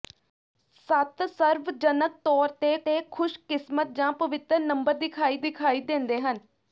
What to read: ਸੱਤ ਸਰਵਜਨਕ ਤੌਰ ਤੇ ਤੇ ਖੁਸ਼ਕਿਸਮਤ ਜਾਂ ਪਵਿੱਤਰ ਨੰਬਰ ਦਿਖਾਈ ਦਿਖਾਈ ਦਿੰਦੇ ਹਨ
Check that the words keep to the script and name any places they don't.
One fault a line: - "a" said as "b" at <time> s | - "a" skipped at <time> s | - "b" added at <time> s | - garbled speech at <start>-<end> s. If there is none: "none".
none